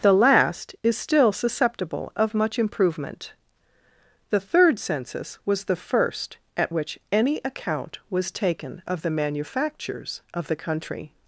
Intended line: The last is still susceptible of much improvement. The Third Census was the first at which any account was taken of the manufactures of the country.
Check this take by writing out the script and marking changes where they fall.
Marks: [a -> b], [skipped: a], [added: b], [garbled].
The last is still susceptible of much improvement. The Third Census was the first at which any account was taken of the manufactures of the country.